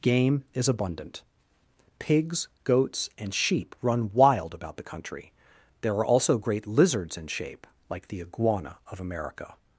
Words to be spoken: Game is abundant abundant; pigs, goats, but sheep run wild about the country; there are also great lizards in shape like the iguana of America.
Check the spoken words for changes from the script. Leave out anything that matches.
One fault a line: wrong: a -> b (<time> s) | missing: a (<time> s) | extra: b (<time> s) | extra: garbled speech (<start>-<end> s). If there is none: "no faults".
missing: abundant (1.2 s)
wrong: but -> and (3.2 s)